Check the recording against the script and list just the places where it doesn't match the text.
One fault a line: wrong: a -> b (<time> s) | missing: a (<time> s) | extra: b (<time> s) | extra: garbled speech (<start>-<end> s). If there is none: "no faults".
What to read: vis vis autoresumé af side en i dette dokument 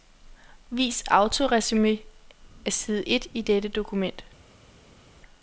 missing: vis (1.0 s)
wrong: en -> et (3.0 s)